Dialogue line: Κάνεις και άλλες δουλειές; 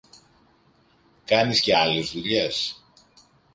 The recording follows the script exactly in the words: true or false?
true